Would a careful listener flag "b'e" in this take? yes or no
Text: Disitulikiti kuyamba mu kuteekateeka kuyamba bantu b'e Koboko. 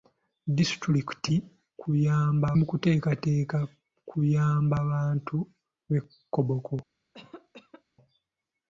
no